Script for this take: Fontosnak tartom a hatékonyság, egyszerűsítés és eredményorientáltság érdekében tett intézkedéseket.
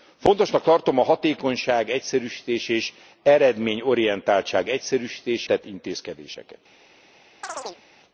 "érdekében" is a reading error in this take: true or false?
true